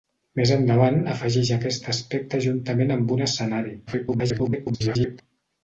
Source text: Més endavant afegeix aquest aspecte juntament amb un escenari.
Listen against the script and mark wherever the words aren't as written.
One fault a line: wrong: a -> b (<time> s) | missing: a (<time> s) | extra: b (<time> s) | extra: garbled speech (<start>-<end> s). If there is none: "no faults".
extra: garbled speech (3.9-5.2 s)